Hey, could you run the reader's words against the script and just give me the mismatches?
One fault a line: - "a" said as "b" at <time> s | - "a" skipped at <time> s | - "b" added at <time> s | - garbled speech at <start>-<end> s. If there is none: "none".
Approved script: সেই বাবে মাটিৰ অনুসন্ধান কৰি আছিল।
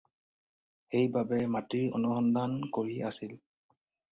none